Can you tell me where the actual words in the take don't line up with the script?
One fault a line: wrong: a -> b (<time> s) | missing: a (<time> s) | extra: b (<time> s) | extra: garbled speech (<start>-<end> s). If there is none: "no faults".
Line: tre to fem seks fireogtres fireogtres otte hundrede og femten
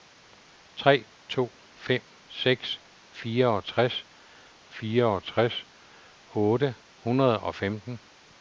no faults